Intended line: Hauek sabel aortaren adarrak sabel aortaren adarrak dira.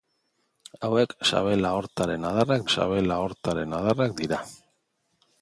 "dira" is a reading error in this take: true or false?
false